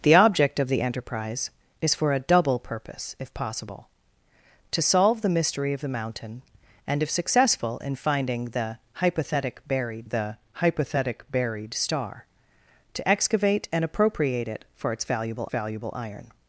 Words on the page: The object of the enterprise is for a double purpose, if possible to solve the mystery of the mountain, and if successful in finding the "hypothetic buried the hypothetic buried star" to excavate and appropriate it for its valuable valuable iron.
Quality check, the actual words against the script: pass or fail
pass